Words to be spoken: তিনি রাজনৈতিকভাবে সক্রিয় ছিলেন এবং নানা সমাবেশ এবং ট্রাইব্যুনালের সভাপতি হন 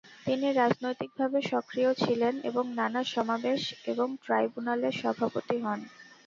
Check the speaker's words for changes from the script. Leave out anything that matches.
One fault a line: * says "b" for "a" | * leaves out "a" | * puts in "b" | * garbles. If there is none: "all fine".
all fine